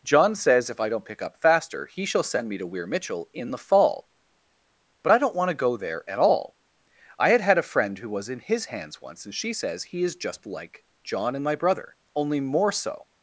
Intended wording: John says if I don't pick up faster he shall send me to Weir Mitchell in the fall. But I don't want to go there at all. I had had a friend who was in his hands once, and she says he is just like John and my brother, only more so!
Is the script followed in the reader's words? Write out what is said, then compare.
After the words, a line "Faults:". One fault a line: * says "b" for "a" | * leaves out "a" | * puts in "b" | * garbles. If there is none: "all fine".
John says if I don't pick up faster he shall send me to Weir Mitchell in the fall. But I don't want to go there at all. I had had a friend who was in his hands once, and she says he is just like John and my brother, only more so!
Faults:
all fine